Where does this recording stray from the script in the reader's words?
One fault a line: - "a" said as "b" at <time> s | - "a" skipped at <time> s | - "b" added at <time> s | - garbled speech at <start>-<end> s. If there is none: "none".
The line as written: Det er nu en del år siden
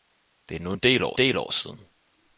- "del år" added at 1.1 s